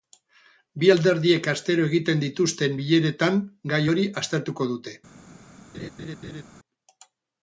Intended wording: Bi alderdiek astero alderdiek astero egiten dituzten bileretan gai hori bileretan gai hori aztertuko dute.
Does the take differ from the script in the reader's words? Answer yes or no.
yes